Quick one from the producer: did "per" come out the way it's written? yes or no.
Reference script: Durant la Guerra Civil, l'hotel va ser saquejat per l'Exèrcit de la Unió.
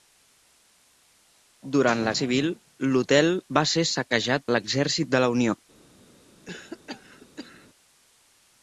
no